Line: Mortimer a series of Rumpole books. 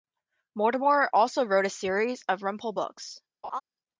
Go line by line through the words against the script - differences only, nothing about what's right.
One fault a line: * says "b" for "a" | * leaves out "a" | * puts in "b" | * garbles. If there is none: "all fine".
* puts in "also wrote"